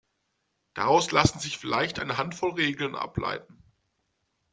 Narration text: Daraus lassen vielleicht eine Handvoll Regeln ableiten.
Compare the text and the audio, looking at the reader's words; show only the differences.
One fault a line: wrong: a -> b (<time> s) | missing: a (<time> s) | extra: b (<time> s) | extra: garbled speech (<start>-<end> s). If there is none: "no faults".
extra: sich (1.4 s)